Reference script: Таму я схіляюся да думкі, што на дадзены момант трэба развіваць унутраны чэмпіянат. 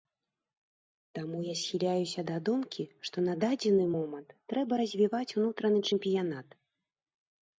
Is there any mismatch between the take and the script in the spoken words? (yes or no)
no